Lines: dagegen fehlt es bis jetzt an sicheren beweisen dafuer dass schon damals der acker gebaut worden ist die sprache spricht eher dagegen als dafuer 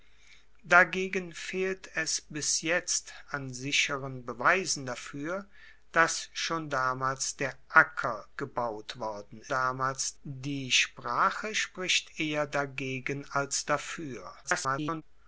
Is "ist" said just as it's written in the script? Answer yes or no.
no